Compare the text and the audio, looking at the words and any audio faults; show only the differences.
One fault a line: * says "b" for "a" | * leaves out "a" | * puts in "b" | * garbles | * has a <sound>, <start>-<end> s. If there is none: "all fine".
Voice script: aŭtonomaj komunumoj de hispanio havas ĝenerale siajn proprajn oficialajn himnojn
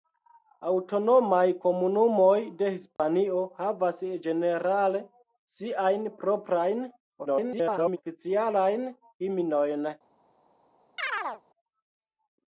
* has a dropout, 3.0-3.0 s
* garbles
* has a chirp, 11.0-11.4 s